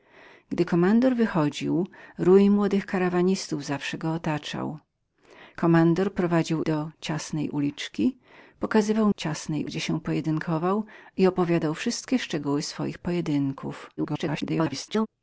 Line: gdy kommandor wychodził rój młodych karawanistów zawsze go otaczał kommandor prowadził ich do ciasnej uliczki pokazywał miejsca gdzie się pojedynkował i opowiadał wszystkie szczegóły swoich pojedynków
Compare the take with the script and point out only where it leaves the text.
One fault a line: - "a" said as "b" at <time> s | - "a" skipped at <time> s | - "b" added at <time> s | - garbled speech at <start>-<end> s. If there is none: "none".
- "ich" skipped at 6.6 s
- "miejsca" said as "ciasnej" at 9.2 s
- garbled speech at 14.0-15.1 s